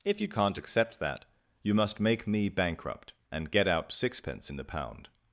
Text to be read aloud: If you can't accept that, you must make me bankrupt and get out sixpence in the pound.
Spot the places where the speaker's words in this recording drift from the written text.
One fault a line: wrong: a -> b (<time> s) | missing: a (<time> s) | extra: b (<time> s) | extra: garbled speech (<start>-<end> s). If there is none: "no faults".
no faults